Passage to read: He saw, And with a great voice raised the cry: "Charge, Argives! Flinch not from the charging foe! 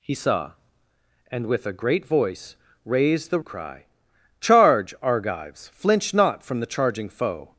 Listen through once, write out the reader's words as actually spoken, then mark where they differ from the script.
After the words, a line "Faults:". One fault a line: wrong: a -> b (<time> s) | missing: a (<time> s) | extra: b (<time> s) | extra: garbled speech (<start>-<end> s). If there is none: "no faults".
He saw, And with a great voice raised the cry: "Charge, Argives! Flinch not from the charging foe!
Faults:
no faults